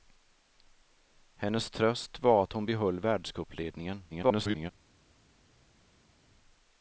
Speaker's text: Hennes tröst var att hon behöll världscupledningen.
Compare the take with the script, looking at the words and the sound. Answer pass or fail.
fail